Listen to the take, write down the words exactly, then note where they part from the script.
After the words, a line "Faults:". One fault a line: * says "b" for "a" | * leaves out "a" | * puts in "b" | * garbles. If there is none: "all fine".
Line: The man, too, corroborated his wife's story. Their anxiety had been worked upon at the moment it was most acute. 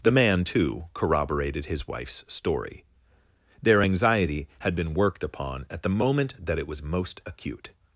The man, too, corroborated his wife's story. Their anxiety had been worked upon at the moment that it was most acute.
Faults:
* puts in "that"